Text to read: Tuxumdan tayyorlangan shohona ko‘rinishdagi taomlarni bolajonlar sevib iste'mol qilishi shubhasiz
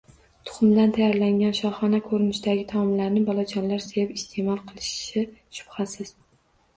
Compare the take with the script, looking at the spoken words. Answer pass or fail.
pass